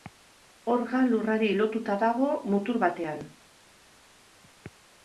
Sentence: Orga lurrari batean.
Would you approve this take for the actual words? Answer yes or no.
no